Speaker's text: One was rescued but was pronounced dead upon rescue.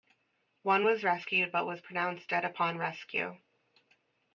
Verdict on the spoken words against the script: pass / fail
pass